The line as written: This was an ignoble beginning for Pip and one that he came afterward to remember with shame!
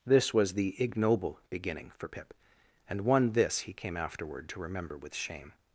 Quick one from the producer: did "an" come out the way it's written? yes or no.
no